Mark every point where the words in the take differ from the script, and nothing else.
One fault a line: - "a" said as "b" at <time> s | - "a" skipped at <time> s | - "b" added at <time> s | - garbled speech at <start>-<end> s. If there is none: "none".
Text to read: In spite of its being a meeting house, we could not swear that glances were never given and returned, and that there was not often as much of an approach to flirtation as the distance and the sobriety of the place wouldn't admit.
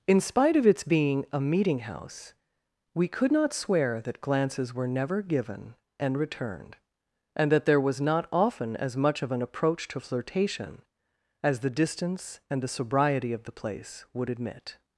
- "wouldn't" said as "would" at 14.1 s